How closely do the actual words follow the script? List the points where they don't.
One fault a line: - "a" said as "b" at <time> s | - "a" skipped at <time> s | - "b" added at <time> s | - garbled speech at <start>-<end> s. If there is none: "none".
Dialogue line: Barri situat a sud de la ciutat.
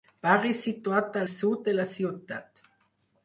none